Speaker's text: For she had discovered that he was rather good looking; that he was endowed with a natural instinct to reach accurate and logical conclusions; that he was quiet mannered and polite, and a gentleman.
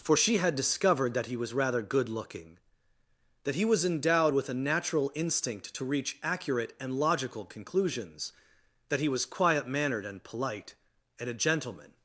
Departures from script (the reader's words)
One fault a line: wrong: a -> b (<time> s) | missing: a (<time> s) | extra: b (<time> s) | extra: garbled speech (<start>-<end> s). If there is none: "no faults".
no faults